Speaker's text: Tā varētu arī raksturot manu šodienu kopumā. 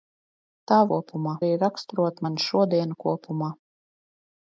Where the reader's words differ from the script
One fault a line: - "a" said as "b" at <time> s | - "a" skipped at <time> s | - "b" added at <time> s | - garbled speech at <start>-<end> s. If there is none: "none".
- "varētu" said as "kopumā" at 0.9 s